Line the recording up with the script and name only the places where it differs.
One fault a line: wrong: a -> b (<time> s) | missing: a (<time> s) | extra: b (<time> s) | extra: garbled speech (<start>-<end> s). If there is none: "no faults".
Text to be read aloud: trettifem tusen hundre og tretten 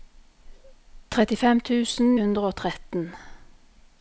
no faults